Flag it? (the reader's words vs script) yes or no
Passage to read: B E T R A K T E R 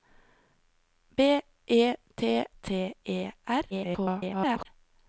yes